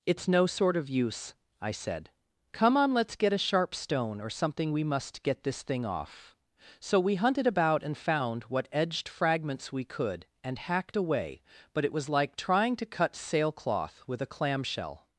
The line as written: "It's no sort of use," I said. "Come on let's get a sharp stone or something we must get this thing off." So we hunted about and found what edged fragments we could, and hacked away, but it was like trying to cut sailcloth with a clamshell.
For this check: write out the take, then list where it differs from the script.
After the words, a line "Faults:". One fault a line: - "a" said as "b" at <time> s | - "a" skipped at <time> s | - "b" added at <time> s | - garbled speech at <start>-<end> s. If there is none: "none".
"It's no sort of use," I said. "Come on let's get a sharp stone or something we must get this thing off." So we hunted about and found what edged fragments we could, and hacked away, but it was like trying to cut sailcloth with a clamshell.
Faults:
none